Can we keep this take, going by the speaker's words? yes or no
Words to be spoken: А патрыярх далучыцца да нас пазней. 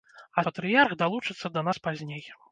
yes